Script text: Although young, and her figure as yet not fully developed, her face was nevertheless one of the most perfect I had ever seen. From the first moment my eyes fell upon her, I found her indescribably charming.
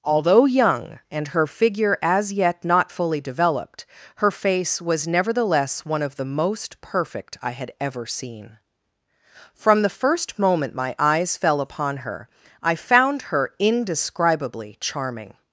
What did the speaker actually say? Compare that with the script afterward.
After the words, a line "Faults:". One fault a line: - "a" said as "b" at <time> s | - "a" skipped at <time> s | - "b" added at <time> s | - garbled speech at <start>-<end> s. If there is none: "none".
Although young, and her figure as yet not fully developed, her face was nevertheless one of the most perfect I had ever seen. From the first moment my eyes fell upon her, I found her indescribably charming.
Faults:
none